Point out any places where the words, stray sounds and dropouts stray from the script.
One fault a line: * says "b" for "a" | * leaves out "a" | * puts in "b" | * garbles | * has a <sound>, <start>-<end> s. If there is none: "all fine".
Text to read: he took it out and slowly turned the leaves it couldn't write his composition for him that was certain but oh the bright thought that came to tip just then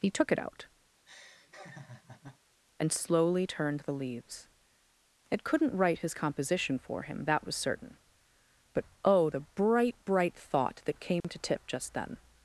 * has a laugh, 1.0-2.4 s
* puts in "bright"
* has a dropout, 11.2-11.2 s